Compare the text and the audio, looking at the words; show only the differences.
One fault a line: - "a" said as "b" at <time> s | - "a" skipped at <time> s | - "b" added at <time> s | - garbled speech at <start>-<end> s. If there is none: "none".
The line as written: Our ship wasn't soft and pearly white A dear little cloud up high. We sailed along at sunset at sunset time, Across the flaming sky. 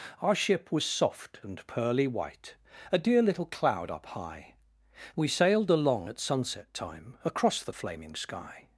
- "wasn't" said as "was" at 0.7 s
- "at sunset" skipped at 6.7 s